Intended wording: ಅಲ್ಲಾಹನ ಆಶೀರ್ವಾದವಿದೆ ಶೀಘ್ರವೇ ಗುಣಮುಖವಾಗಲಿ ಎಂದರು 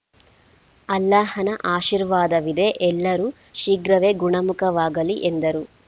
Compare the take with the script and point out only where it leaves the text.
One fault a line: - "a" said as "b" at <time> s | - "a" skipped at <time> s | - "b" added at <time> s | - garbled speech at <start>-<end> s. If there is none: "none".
- "ಎಲ್ಲರೂ" added at 2.9 s